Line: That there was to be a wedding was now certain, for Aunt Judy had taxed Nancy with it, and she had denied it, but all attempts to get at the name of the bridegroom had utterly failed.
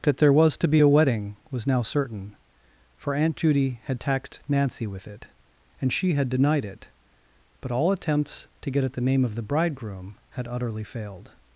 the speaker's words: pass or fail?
pass